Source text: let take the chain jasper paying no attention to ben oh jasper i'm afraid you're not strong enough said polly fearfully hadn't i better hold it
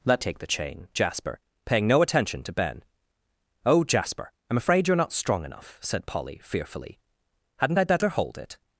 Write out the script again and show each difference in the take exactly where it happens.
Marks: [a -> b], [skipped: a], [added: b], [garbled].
let take the chain jasper paying no attention to ben oh jasper i'm afraid you're not strong enough said polly fearfully hadn't i better hold it